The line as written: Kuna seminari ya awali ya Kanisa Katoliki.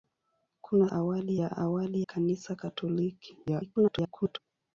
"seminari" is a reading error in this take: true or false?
true